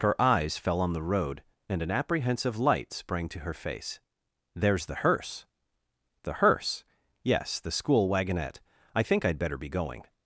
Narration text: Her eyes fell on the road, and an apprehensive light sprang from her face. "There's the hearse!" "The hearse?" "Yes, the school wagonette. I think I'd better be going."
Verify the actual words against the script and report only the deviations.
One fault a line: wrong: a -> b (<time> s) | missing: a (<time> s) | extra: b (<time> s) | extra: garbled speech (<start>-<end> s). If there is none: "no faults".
wrong: from -> to (3.3 s)